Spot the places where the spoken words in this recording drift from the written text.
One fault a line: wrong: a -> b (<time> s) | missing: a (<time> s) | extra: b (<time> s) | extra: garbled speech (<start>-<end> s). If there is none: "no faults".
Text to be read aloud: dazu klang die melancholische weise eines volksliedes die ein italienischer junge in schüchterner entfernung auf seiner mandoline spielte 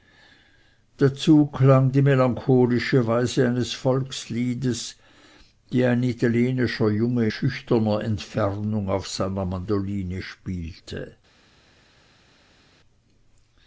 missing: in (7.3 s)